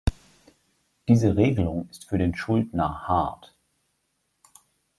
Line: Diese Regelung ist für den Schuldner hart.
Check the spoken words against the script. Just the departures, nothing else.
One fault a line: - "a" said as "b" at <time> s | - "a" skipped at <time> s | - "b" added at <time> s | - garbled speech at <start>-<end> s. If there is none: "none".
none